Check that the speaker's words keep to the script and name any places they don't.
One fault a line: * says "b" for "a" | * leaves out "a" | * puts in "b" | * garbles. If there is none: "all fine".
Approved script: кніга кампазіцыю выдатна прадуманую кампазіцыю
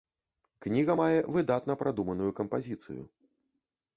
* says "мае" for "кампазіцыю"